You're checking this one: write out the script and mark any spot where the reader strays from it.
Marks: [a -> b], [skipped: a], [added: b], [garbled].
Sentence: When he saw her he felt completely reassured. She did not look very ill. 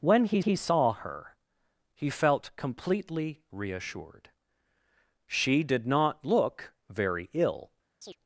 When he [added: he] saw her he felt completely reassured. She did not look very ill.